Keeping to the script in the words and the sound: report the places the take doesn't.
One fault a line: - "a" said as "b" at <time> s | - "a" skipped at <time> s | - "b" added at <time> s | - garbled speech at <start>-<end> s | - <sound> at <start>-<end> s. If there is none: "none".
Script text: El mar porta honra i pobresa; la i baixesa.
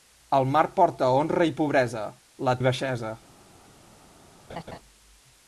- laugh at 4.5-4.8 s